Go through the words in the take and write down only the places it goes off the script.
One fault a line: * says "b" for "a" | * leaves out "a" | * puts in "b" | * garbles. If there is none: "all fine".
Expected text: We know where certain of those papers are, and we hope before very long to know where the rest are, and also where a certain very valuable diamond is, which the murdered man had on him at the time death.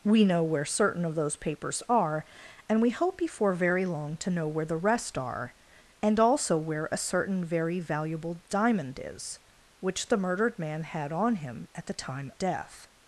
all fine